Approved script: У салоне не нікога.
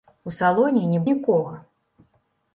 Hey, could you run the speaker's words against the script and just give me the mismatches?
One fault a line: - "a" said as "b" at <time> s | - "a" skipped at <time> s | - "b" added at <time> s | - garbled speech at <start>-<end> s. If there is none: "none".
none